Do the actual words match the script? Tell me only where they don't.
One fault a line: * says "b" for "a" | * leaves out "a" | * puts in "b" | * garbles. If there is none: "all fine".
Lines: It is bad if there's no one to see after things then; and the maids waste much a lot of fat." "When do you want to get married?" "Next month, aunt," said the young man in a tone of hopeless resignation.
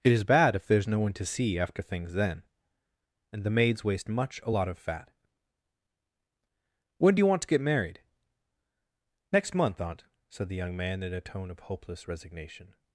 all fine